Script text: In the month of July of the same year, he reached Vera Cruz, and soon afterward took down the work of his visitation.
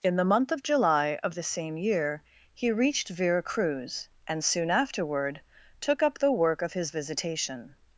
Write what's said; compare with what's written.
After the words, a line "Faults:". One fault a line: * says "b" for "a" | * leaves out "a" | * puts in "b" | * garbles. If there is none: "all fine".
In the month of July of the same year, he reached Vera Cruz, and soon afterward took up the work of his visitation.
Faults:
* says "up" for "down"